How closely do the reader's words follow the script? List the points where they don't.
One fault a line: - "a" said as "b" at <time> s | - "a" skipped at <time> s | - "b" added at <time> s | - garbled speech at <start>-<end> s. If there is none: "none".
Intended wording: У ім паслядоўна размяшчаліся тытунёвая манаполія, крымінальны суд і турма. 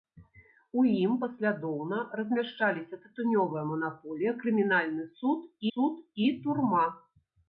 - "суд" added at 5.7 s